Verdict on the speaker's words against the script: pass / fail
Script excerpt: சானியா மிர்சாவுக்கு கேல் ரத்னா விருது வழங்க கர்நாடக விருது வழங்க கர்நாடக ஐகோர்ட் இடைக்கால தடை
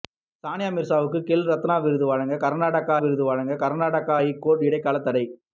pass